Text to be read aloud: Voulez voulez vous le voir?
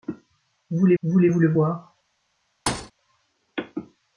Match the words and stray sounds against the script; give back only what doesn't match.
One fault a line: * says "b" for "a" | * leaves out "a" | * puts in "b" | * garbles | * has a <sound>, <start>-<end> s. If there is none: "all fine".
* has a thud, 2.7-2.9 s